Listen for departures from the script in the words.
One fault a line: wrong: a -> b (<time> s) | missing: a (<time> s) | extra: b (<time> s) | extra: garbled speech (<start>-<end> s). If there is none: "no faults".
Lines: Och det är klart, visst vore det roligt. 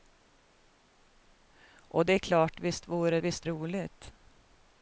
wrong: det -> visst (3.2 s)